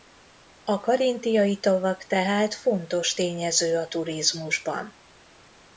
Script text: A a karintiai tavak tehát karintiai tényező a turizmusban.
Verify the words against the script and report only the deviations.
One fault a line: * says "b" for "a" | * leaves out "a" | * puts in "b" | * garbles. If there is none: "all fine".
* leaves out "a"
* says "fontos" for "karintiai"